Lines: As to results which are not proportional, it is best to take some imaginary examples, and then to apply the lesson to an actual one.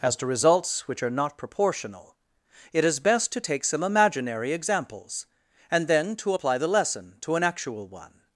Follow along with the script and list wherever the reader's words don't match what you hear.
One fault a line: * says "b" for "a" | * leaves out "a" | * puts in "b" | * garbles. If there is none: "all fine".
all fine